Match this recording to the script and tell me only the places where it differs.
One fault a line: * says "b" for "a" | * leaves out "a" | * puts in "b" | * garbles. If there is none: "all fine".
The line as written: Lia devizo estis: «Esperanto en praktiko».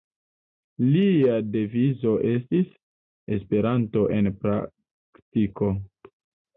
all fine